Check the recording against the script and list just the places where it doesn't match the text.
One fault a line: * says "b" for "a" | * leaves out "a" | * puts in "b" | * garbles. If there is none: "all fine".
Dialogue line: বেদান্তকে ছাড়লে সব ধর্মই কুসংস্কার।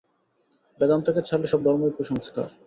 all fine